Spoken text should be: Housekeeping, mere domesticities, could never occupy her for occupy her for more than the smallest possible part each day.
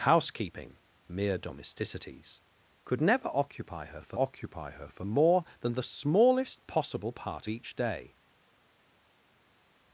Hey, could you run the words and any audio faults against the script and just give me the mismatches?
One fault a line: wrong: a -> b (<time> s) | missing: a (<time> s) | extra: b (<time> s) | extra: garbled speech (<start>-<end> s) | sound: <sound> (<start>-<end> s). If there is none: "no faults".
no faults